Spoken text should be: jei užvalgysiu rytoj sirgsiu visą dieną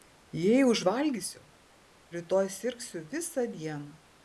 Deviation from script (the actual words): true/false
false